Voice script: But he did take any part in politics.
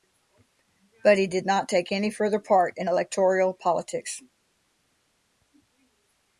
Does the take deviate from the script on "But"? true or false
false